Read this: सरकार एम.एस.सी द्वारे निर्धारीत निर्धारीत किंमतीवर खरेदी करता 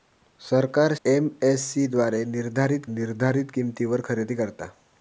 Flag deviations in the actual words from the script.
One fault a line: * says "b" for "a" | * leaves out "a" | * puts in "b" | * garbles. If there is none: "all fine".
all fine